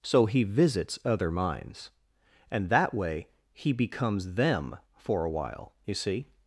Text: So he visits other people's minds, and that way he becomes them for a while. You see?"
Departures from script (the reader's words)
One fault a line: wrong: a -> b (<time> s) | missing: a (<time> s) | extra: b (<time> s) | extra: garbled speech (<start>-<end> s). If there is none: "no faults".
missing: people's (1.3 s)